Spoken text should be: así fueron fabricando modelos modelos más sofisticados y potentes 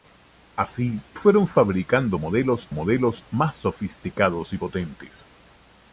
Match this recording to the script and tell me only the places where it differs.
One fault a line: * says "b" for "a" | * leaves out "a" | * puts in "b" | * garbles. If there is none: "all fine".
all fine